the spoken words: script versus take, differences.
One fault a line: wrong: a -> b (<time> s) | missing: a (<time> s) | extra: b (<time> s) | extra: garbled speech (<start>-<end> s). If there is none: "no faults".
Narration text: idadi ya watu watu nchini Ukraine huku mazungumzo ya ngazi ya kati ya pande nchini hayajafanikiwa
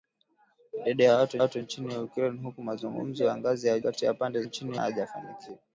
no faults